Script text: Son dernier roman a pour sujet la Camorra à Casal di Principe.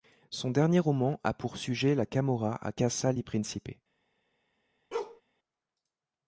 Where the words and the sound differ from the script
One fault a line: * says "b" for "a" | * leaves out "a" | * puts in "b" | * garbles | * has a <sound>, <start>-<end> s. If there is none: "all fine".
* has a bark, 4.9-5.2 s